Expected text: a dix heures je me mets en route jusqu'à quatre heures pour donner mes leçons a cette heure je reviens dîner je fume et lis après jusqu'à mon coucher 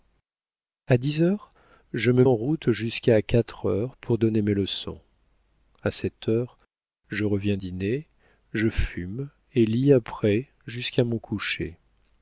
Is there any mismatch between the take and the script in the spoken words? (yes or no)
yes